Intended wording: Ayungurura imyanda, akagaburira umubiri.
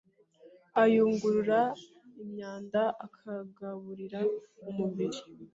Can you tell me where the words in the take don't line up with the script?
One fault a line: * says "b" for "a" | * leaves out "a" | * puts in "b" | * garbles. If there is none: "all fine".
all fine